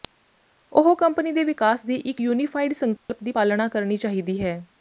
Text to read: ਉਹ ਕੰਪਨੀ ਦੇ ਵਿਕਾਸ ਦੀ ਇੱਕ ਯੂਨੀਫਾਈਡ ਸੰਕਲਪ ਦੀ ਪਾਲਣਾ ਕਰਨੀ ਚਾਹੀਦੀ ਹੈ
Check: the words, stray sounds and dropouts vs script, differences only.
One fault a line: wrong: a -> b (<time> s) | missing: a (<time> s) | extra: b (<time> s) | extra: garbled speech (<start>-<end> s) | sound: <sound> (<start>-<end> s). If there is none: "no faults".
sound: dropout (3.0-3.1 s)